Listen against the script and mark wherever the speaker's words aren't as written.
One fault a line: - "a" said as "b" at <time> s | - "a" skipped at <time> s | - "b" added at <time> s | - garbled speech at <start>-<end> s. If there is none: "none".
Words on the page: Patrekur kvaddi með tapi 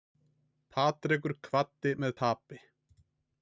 none